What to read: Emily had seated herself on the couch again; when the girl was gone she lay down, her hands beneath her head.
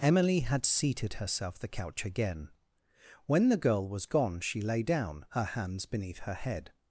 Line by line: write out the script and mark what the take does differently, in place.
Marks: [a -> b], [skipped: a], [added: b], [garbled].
Emily had seated herself [skipped: on] the couch again; when the girl was gone she lay down, her hands beneath her head.